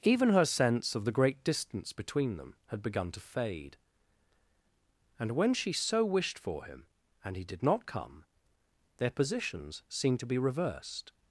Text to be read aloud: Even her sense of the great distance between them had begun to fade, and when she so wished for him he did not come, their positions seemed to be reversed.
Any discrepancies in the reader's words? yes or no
yes